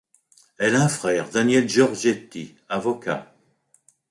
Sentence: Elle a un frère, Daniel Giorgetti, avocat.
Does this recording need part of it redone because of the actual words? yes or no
no